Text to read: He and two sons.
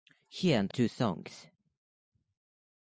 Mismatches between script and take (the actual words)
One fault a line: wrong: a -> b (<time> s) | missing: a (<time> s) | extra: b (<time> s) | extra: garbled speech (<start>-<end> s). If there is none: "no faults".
no faults